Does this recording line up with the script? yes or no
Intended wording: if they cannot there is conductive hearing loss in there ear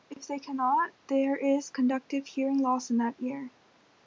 no